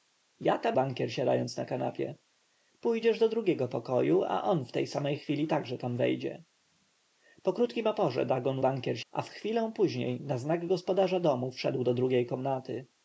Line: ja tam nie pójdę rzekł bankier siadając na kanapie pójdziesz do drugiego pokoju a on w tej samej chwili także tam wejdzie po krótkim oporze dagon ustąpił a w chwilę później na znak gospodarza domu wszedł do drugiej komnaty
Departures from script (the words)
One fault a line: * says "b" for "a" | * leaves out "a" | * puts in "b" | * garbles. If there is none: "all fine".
* leaves out "nie pójdę rzekł"
* says "bankier" for "ustąpił"